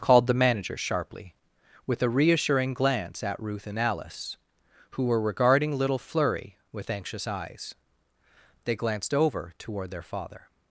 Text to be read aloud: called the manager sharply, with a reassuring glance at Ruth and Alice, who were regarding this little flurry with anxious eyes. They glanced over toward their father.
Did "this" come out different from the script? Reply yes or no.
yes